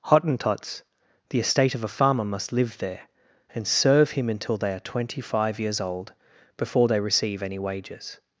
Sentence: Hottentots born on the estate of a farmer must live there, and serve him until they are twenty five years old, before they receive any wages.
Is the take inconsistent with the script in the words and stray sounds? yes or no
yes